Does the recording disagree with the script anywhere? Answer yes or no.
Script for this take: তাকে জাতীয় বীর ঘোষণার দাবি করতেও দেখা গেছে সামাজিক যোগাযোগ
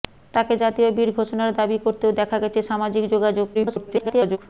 yes